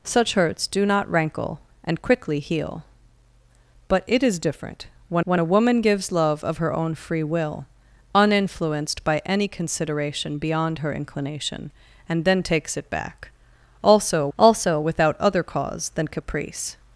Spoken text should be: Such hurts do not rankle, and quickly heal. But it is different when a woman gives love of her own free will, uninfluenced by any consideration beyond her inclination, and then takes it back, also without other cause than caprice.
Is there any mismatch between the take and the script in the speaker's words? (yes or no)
yes